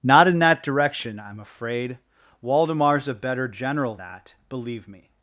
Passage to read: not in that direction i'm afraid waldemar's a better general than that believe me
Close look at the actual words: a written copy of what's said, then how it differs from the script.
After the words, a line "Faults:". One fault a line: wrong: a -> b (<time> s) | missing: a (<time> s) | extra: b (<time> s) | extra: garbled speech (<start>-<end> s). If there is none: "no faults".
not in that direction i'm afraid waldemar's a better general that believe me
Faults:
missing: than (4.0 s)